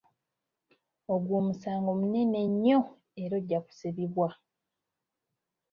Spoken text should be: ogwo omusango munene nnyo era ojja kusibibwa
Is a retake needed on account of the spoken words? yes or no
no